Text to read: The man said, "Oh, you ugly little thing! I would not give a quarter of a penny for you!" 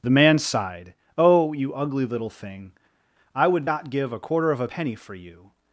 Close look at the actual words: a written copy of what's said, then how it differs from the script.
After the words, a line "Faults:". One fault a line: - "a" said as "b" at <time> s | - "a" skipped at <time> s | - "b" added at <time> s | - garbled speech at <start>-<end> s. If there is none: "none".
The man sighed, "Oh, you ugly little thing! I would not give a quarter of a penny for you!"
Faults:
- "said" said as "sighed" at 0.4 s